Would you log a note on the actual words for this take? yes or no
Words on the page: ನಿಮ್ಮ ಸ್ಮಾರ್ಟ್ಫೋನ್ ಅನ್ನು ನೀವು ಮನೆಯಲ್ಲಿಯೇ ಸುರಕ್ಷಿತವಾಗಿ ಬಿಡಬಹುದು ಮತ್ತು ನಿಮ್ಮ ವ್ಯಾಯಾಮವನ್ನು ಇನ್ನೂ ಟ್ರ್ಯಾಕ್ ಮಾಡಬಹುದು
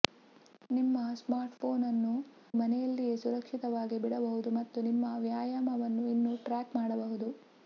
yes